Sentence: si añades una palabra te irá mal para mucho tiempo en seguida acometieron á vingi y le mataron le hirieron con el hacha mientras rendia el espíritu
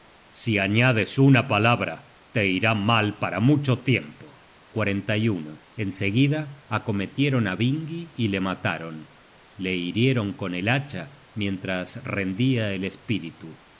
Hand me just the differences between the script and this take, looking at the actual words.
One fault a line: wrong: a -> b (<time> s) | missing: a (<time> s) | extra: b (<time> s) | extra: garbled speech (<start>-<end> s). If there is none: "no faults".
no faults